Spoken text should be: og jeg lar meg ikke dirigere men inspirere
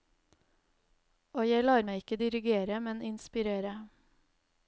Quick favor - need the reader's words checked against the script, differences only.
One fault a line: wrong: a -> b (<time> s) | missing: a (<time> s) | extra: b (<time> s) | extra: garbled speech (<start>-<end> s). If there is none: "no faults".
no faults